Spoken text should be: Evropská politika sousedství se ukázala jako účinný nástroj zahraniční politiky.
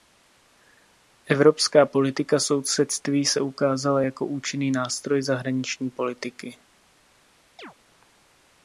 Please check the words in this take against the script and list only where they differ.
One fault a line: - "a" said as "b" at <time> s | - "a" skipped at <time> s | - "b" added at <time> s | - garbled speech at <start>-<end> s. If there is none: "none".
none